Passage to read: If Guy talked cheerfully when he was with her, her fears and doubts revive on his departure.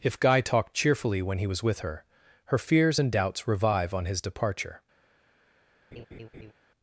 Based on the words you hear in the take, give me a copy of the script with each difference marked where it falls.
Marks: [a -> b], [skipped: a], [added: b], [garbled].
If Guy talked cheerfully when he was with her, her fears and doubts revive on his departure.